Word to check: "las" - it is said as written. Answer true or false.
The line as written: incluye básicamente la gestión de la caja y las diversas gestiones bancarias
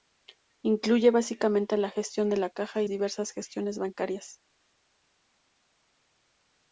false